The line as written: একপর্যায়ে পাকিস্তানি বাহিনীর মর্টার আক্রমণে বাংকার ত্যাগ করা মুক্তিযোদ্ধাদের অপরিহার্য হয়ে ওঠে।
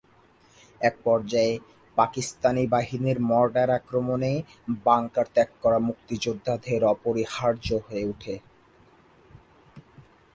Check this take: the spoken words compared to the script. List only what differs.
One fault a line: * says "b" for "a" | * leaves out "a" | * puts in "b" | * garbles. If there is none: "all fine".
all fine